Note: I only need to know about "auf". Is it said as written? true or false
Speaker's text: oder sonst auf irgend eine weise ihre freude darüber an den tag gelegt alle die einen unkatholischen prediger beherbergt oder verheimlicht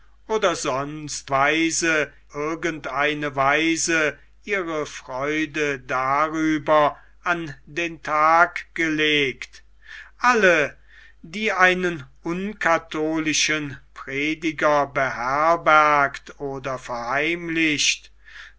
false